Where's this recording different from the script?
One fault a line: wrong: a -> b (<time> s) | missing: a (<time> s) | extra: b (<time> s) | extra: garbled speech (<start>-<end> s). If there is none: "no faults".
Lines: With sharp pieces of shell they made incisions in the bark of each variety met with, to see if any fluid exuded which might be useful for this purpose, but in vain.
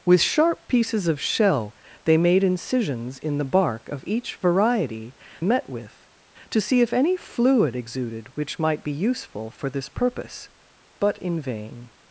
no faults